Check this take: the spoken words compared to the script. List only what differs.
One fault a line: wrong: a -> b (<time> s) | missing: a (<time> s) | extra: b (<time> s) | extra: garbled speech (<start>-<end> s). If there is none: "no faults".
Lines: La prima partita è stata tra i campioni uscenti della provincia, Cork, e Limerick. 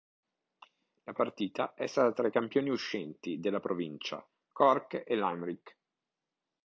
missing: prima (1.1 s)